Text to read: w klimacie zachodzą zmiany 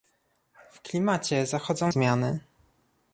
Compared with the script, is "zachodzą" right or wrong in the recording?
right